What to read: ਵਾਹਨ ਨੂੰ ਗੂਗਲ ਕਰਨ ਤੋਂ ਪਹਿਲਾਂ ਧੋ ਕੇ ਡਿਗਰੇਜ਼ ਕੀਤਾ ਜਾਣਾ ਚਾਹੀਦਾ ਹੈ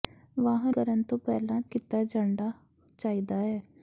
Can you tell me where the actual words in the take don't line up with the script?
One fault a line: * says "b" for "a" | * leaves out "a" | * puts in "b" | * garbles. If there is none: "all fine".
* leaves out "ਨੂੰ ਗੂਗਲ"
* leaves out "ਧੋ ਕੇ ਡਿਗਰੇਜ਼"